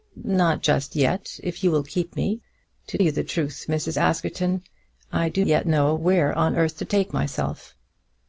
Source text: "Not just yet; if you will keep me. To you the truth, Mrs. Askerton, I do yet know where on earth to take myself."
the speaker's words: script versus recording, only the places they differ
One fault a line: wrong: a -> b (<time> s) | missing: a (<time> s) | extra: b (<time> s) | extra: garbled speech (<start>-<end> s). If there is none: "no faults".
no faults